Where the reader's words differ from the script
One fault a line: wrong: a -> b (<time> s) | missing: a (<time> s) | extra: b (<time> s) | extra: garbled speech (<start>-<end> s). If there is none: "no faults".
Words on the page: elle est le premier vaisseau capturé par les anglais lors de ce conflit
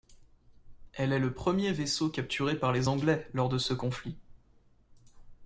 no faults